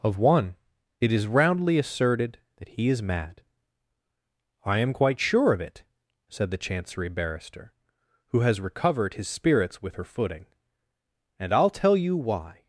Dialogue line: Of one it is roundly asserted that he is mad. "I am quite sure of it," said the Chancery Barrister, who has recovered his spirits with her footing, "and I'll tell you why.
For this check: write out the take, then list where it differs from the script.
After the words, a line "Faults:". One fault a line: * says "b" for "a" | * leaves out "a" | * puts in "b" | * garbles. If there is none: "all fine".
Of one it is roundly asserted that he is mad. "I am quite sure of it," said the Chancery Barrister, who has recovered his spirits with her footing, "and I'll tell you why.
Faults:
all fine